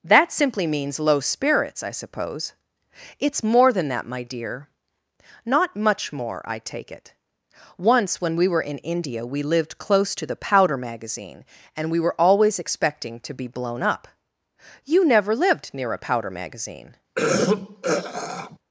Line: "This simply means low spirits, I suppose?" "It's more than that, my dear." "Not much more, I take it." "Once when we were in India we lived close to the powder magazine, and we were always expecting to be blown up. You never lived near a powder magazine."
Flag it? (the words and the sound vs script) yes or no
yes